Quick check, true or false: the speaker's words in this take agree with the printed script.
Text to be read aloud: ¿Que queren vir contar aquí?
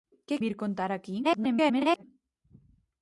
false